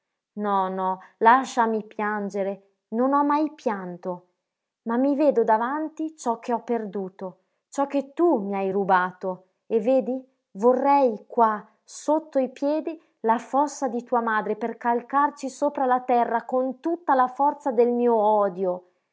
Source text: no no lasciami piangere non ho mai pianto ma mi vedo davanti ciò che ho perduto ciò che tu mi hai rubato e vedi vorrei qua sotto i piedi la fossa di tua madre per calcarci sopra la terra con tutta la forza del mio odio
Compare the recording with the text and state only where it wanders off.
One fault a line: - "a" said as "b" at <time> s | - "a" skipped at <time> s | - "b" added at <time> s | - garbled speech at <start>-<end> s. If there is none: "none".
none